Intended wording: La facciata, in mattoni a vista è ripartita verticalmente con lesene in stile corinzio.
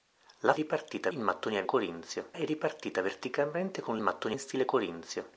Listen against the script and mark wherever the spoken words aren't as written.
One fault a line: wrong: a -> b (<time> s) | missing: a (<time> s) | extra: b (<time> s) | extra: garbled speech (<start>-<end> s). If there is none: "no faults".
wrong: facciata -> ripartita (0.5 s)
wrong: vista -> corinzio (1.6 s)
wrong: lesene -> mattoni (4.0 s)